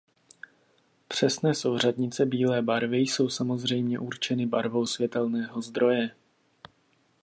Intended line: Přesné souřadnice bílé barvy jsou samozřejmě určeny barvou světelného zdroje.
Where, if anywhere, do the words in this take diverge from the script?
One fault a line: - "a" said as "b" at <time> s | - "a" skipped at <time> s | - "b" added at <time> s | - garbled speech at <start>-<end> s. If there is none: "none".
none